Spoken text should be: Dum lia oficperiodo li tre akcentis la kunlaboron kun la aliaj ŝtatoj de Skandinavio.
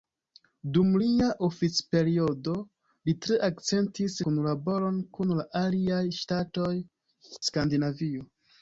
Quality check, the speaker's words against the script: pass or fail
fail